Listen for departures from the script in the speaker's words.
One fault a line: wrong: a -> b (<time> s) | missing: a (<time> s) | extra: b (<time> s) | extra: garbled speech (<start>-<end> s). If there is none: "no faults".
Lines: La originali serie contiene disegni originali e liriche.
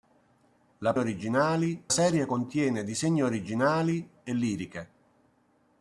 no faults